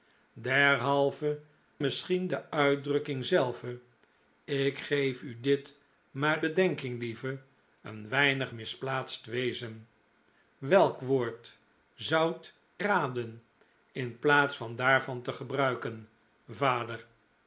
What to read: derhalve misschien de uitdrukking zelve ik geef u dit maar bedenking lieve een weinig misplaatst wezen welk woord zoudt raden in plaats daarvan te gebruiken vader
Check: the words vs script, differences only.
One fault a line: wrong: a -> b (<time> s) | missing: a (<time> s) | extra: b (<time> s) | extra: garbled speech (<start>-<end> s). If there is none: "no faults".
no faults